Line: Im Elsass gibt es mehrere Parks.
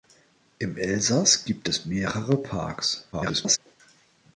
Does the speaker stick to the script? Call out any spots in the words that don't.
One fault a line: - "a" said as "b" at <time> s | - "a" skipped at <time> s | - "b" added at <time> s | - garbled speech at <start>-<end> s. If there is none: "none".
- garbled speech at 3.1-3.6 s